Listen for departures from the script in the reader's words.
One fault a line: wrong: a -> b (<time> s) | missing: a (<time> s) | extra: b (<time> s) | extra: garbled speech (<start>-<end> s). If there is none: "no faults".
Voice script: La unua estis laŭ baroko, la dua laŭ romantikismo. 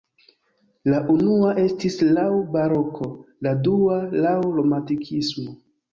no faults